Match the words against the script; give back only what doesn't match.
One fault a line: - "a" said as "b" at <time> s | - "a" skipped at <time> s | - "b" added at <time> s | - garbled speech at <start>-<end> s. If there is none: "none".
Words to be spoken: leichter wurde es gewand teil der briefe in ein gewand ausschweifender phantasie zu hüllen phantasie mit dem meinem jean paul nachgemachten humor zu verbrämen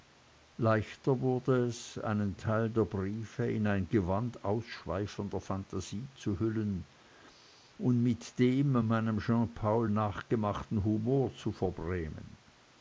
- "gewand" said as "einen" at 2.0 s
- "phantasie" said as "und" at 7.8 s